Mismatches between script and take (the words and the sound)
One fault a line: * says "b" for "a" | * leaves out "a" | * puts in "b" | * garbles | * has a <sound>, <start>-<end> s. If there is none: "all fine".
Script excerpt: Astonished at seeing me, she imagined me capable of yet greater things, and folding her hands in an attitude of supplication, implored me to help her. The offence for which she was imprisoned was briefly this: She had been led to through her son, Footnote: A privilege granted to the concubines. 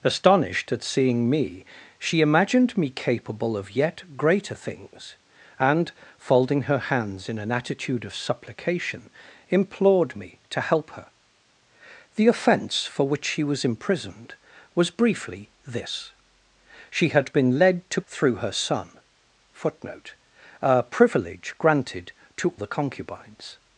all fine